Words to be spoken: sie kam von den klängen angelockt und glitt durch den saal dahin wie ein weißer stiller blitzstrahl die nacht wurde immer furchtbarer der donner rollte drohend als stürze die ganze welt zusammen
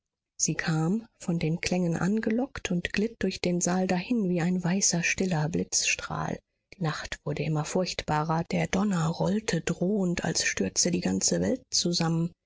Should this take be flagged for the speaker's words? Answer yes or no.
no